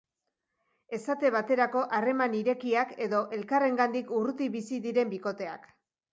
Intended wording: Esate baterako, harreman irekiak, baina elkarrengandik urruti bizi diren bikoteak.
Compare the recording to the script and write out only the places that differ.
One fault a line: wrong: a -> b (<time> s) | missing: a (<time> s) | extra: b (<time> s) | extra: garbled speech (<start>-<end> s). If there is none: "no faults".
wrong: baina -> edo (3.1 s)